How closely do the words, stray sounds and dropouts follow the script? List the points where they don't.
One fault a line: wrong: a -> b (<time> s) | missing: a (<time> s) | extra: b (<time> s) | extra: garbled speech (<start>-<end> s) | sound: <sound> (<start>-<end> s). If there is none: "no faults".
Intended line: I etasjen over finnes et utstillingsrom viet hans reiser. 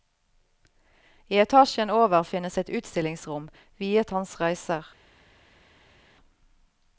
no faults